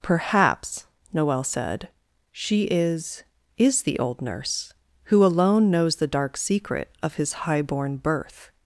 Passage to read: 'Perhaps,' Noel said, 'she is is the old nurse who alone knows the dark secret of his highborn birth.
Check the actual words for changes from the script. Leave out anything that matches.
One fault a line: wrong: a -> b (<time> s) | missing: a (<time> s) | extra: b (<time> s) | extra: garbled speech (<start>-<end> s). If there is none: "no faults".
no faults